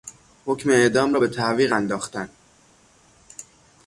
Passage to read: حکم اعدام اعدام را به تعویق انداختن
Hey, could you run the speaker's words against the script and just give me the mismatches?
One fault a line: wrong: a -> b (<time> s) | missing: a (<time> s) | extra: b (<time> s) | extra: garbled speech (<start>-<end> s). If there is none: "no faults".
missing: اعدام (1.1 s)